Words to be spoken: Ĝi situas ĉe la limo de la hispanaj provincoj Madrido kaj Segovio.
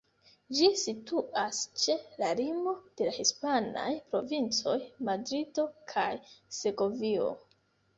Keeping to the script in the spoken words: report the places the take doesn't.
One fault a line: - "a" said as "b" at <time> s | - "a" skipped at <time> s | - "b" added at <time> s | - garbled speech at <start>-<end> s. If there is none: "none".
none